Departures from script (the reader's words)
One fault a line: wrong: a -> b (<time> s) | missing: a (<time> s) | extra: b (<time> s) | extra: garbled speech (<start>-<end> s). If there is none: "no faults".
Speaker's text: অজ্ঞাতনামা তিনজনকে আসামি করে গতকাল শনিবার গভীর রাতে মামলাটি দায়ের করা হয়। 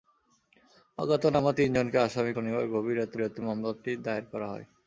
missing: করে গতকাল (2.3 s)
extra: রাতে (3.2 s)